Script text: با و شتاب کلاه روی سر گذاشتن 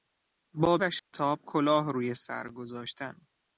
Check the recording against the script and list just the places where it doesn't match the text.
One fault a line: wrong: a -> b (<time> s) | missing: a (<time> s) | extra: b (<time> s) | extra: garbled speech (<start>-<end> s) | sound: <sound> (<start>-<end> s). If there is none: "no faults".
sound: dropout (1.0-1.1 s)